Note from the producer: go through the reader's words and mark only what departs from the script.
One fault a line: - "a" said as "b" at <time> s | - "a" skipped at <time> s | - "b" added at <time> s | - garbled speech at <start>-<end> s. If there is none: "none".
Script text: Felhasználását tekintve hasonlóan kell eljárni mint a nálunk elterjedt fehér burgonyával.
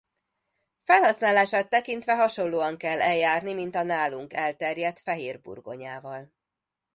none